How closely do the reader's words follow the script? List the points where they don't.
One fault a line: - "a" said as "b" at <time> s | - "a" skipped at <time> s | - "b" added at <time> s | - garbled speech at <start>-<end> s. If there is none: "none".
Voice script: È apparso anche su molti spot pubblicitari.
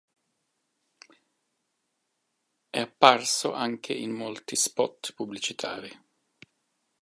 - "su" said as "in" at 3.9 s